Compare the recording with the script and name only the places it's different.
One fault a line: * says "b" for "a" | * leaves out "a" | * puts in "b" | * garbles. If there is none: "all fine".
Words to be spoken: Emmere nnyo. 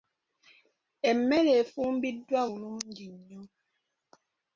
* puts in "efumbiddwa bulungi"